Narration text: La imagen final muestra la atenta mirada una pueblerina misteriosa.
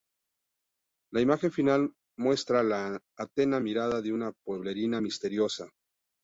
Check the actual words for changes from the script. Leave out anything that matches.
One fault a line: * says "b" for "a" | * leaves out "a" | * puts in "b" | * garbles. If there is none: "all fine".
* puts in "de"